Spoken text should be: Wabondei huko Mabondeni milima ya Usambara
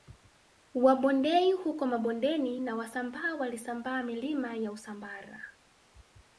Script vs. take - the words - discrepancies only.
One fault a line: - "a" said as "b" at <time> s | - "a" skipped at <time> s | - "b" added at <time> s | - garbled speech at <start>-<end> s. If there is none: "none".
- "na Wasambaa walisambaa" added at 2.6 s